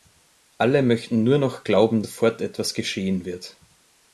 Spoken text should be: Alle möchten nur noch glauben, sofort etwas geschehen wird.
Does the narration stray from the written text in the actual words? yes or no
no